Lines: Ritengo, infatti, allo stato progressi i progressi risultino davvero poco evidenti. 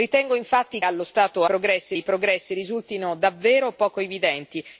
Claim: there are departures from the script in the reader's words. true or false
false